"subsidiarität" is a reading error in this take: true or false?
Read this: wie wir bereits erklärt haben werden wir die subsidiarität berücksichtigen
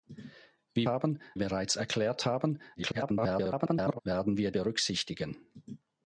true